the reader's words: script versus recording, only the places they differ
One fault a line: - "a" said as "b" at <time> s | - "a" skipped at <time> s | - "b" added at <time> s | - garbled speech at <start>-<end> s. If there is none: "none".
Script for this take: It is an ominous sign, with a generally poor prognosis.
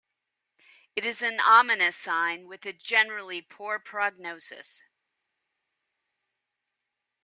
none